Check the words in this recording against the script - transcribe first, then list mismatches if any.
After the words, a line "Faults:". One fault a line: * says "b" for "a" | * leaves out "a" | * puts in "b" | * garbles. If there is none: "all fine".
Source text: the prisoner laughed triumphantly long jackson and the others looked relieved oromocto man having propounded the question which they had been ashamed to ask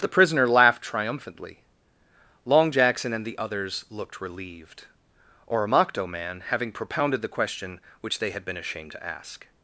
the prisoner laughed triumphantly long jackson and the others looked relieved oromocto man having propounded the question which they had been ashamed to ask
Faults:
all fine